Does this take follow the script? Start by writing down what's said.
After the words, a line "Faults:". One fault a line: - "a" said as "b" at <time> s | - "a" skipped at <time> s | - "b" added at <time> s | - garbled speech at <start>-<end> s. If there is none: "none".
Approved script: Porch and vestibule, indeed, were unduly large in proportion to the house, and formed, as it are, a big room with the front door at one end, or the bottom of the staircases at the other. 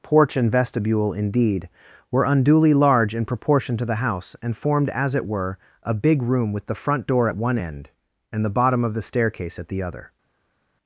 Porch and vestibule, indeed, were unduly large in proportion to the house, and formed, as it were, a big room with the front door at one end, and the bottom of the staircase at the other.
Faults:
- "are" said as "were" at 5.2 s
- "or" said as "and" at 8.3 s
- "staircases" said as "staircase" at 9.0 s